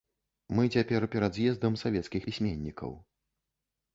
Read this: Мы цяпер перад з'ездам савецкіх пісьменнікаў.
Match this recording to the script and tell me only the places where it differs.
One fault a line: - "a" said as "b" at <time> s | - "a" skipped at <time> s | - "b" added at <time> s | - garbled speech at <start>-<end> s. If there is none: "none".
none